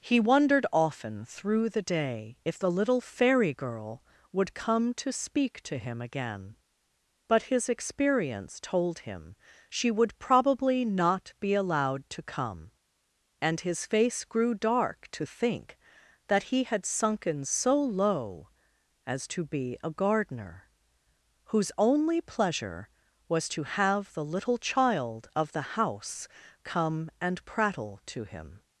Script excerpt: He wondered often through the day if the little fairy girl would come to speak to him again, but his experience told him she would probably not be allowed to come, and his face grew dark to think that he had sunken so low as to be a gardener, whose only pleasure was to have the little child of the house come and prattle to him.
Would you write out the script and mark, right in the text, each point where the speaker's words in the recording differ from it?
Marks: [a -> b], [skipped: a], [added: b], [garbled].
He wondered often through the day if the little fairy girl would come to speak to him again, but his experience told him she would probably not be allowed to come, and his face grew dark to think that he had sunken so low as to be a gardener, whose only pleasure was to have the little child of the house come and prattle to him.